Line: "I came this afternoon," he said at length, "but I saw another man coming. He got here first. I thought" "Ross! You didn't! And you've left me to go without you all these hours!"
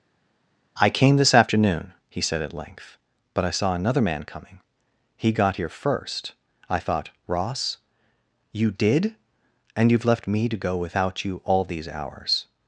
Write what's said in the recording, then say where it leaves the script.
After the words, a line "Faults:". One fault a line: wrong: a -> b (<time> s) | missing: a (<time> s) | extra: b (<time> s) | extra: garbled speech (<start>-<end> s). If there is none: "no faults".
"I came this afternoon," he said at length, "but I saw another man coming. He got here first. I thought" "Ross! You did! And you've left me to go without you all these hours!"
Faults:
wrong: didn't -> did (8.7 s)